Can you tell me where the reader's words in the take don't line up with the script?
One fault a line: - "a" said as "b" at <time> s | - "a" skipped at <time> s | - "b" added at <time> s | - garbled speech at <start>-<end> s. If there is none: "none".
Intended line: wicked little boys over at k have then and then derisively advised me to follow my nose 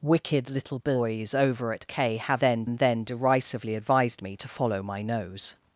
none